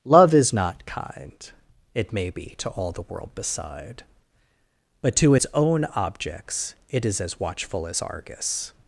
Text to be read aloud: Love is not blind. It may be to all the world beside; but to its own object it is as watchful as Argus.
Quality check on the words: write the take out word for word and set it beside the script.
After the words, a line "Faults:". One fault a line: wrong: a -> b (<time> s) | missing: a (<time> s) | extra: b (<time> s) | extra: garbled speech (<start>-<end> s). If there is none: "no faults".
Love is not kind. It may be to all the world beside; but to its own objects it is as watchful as Argus.
Faults:
wrong: blind -> kind (0.9 s)
wrong: object -> objects (5.9 s)